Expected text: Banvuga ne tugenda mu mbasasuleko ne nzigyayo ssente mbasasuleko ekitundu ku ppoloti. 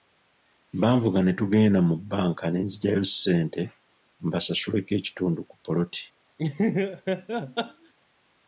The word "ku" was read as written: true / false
true